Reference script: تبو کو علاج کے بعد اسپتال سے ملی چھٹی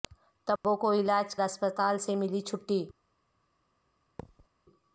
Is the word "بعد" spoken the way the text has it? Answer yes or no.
no